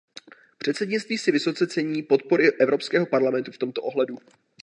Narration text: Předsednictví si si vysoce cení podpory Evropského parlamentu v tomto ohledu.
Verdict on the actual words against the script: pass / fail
fail